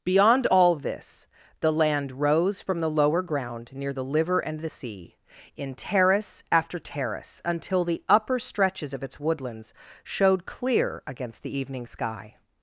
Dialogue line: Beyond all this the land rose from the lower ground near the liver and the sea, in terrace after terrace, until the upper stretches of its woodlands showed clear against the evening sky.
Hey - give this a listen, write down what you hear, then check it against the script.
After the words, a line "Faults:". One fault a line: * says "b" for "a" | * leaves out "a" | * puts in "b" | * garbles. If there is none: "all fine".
Beyond all this the land rose from the lower ground near the liver and the sea, in terrace after terrace, until the upper stretches of its woodlands showed clear against the evening sky.
Faults:
all fine